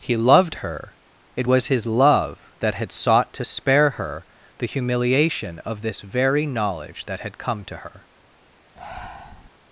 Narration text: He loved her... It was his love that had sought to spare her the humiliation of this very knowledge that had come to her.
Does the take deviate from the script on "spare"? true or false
false